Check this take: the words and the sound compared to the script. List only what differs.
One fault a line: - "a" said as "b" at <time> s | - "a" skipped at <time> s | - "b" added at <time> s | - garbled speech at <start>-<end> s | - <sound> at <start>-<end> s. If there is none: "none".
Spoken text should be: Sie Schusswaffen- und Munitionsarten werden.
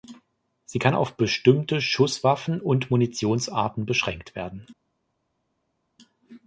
- "kann auf bestimmte" added at 0.8 s
- "beschränkt" added at 3.9 s